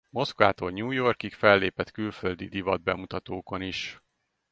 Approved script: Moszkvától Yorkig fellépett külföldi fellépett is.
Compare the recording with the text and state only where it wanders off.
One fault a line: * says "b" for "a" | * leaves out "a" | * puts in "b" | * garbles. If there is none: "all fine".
* puts in "New"
* says "divatbemutatókon" for "fellépett"